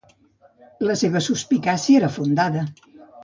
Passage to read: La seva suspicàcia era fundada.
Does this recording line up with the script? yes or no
yes